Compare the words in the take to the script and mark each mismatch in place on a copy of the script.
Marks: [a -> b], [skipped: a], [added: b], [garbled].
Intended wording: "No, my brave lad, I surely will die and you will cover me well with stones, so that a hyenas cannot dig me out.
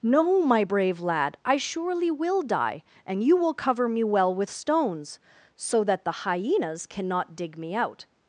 "No, my brave lad, I surely will die and you will cover me well with stones, so that [a -> the] hyenas cannot dig me out.